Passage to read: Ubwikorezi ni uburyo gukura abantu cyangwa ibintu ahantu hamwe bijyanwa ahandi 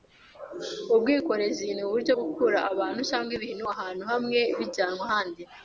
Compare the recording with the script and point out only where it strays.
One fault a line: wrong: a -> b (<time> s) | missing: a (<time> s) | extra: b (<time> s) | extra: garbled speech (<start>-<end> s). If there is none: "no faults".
no faults